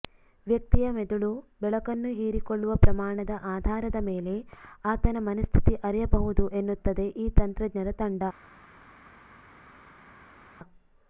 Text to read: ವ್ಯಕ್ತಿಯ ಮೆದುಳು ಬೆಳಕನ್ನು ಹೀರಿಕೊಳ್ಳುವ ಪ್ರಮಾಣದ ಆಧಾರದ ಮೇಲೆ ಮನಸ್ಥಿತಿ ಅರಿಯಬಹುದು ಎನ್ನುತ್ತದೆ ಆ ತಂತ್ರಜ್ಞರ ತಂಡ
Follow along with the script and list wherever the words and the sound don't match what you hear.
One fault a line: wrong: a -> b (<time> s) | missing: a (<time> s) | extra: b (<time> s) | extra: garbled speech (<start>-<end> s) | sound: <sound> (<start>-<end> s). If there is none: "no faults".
extra: ಆತನ (4.8 s)
wrong: ಆ -> ಈ (7.2 s)